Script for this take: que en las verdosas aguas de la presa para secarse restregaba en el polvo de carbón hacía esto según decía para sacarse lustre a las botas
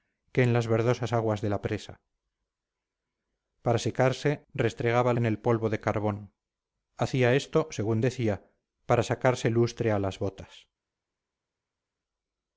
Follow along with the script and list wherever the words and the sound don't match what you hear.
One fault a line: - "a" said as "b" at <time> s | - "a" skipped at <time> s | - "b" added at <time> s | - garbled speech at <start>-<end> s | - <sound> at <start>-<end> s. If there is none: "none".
none